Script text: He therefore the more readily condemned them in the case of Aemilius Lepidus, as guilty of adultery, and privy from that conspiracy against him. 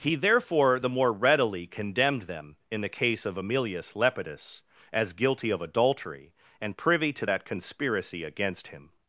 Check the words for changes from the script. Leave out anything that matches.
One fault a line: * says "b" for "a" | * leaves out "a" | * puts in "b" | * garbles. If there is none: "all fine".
* says "to" for "from"